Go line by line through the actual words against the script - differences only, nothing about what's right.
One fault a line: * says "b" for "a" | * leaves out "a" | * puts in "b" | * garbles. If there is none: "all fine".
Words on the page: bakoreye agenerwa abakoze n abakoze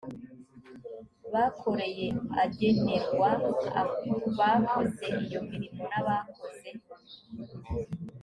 * puts in "iyo mirimo"